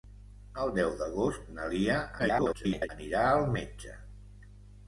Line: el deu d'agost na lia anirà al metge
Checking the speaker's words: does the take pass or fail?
fail